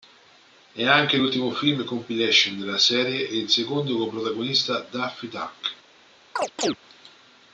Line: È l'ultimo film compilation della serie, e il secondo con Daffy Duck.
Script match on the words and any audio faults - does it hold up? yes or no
no